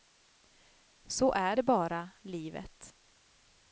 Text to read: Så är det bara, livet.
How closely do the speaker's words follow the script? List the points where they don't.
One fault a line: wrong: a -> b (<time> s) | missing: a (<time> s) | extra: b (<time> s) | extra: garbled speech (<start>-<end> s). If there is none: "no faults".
no faults